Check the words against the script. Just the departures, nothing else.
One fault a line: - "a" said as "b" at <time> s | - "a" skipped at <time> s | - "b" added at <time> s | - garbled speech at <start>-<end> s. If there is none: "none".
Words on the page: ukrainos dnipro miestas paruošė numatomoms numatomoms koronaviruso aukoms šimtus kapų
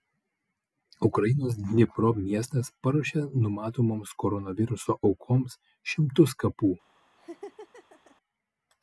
- "numatomoms" skipped at 4.1 s